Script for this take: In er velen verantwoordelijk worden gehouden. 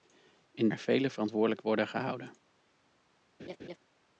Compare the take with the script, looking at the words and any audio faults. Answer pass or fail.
fail